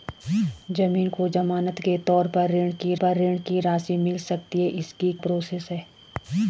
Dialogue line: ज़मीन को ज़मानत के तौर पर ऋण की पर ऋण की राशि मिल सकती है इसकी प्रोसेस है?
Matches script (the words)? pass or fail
pass